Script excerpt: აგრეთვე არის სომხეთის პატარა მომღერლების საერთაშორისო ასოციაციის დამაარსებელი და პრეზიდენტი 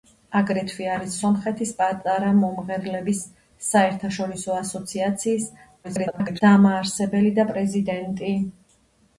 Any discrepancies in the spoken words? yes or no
yes